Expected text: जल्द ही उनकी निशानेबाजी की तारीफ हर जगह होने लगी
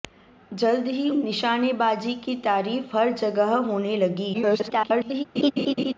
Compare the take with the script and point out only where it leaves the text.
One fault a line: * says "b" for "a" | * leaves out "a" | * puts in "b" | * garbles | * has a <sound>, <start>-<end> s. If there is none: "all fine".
* leaves out "उनकी"
* garbles
* has a laugh, 5.4-5.9 s